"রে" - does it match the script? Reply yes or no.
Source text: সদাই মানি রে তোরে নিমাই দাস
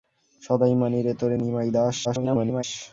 yes